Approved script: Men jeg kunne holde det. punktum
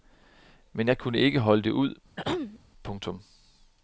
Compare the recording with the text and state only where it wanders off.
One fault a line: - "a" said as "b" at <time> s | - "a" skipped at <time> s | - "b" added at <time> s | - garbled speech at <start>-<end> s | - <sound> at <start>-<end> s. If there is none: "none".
- "ikke" added at 1.2 s
- "ud" added at 1.7 s
- throat clearing at 2.2-2.6 s